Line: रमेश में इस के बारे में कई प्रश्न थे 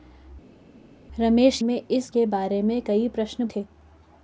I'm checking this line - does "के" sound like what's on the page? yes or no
yes